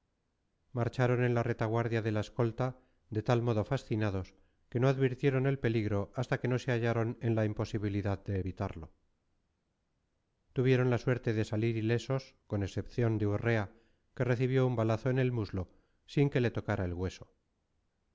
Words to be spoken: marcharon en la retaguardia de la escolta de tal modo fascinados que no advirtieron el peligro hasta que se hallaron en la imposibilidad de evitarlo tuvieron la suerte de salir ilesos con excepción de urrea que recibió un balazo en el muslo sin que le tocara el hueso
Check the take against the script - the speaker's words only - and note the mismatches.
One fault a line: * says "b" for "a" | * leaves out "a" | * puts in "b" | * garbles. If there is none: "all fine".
* puts in "no"